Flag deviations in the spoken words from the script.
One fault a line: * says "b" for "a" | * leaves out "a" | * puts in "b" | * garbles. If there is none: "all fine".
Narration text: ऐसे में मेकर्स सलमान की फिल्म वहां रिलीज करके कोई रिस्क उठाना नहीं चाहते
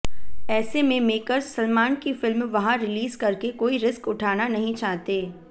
all fine